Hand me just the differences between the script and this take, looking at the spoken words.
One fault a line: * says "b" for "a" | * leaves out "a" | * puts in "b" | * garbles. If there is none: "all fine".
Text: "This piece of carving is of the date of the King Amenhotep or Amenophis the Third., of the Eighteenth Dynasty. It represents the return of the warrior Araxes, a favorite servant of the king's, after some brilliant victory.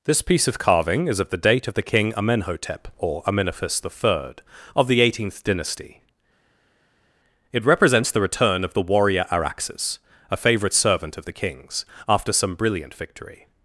all fine